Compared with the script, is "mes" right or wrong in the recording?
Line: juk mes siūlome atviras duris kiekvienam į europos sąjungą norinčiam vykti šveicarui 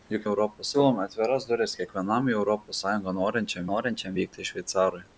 wrong